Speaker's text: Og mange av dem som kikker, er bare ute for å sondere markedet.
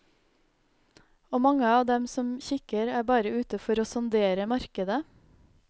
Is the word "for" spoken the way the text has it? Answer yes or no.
yes